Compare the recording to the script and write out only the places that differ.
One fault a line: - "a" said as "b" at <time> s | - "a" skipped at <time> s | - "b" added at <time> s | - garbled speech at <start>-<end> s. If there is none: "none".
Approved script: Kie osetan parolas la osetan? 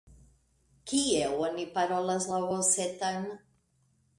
- "osetan" said as "oni" at 1.5 s